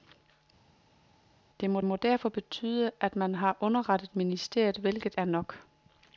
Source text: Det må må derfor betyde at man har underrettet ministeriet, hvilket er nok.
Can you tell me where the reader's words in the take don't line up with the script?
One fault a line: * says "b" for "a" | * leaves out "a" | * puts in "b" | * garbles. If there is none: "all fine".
all fine